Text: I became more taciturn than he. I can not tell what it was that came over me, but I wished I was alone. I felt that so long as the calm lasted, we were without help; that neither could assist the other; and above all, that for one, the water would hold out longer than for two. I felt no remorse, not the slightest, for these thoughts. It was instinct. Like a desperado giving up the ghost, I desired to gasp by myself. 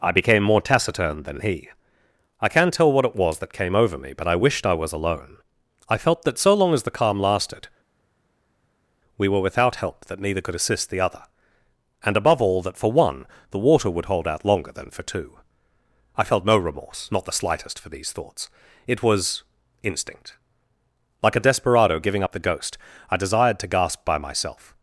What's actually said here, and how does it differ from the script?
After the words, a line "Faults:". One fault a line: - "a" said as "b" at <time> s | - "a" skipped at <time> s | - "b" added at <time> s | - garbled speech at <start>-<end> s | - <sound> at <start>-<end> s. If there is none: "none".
I became more taciturn than he. I can not tell what it was that came over me, but I wished I was alone. I felt that so long as the calm lasted, we were without help; that neither could assist the other; and above all, that for one, the water would hold out longer than for two. I felt no remorse, not the slightest, for these thoughts. It was instinct. Like a desperado giving up the ghost, I desired to gasp by myself.
Faults:
none